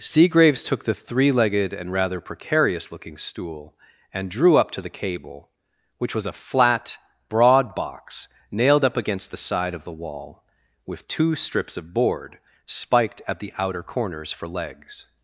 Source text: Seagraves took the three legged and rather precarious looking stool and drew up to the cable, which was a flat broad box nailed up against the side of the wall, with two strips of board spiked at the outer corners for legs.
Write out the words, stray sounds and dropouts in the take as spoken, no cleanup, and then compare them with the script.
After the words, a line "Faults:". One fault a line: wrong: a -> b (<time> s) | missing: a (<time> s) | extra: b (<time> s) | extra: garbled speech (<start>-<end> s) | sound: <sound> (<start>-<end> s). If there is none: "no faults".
Seagraves took the three legged and rather precarious looking stool and drew up to the cable, which was a flat broad box nailed up against the side of the wall, with two strips of board spiked at the outer corners for legs.
Faults:
no faults